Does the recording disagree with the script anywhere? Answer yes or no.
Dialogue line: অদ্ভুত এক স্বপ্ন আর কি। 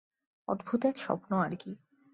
no